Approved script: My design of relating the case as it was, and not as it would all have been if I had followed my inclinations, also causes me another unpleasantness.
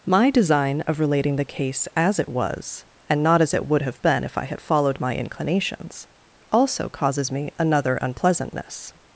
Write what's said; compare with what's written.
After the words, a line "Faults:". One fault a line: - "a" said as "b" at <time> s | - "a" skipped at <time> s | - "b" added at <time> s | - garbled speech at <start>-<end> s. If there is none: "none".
My design of relating the case as it was, and not as it would have been if I had followed my inclinations, also causes me another unpleasantness.
Faults:
- "all" skipped at 3.8 s